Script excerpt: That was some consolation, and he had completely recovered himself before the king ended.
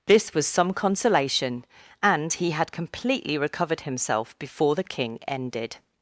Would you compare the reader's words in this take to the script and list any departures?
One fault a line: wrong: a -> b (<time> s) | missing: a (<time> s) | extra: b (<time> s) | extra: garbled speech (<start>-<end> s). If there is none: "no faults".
wrong: That -> This (0.1 s)